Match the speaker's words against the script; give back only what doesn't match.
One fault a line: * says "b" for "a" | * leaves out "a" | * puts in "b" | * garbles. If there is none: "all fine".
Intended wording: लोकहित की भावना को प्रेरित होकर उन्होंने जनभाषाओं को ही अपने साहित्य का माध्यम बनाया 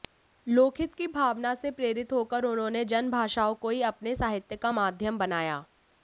* says "से" for "को"